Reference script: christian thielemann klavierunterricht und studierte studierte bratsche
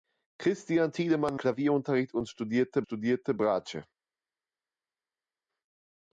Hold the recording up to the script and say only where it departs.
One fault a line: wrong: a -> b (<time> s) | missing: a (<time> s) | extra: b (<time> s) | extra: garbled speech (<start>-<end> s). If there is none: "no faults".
no faults